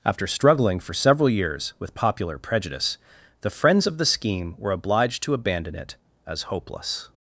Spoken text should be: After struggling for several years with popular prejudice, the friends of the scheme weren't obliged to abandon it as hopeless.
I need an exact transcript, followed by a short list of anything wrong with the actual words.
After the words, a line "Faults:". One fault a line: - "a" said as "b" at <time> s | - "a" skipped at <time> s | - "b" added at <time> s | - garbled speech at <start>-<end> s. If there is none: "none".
After struggling for several years with popular prejudice, the friends of the scheme were obliged to abandon it as hopeless.
Faults:
- "weren't" said as "were" at 4.6 s